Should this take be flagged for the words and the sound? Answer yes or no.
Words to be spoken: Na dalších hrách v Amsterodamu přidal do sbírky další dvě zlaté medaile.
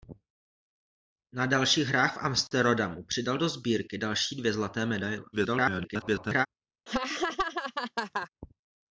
yes